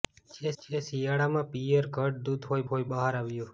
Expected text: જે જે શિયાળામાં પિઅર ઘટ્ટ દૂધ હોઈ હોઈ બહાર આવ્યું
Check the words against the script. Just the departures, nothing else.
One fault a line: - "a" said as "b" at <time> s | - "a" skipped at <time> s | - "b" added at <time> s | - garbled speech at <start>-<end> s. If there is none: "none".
none